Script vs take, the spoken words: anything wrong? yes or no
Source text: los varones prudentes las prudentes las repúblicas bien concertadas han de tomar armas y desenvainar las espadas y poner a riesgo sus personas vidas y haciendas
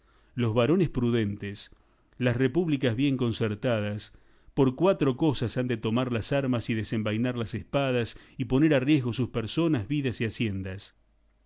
yes